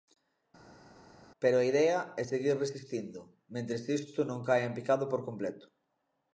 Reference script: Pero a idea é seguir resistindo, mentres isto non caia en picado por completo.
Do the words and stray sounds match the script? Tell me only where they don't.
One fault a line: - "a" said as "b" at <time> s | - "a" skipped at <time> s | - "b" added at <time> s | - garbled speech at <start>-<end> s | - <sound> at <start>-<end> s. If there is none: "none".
none